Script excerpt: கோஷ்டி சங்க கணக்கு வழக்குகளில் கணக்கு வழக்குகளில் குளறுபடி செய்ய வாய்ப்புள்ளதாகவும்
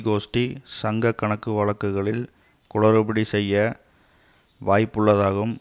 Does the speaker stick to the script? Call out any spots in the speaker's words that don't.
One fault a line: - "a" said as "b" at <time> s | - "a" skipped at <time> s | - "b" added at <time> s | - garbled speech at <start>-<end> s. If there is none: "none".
- "கணக்கு வழக்குகளில்" skipped at 2.2 s